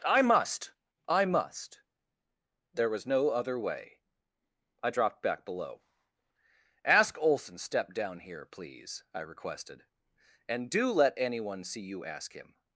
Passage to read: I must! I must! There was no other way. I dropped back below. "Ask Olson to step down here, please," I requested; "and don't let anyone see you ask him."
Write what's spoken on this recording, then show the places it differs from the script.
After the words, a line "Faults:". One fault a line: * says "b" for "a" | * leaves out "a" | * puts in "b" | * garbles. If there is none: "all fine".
I must! I must! There was no other way. I dropped back below. "Ask Olson step down here, please," I requested; "and do let anyone see you ask him."
Faults:
* leaves out "to"
* says "do" for "don't"